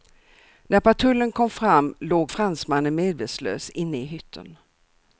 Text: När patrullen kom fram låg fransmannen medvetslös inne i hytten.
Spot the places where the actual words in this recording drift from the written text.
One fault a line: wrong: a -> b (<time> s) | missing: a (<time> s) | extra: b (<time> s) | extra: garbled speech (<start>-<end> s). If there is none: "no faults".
no faults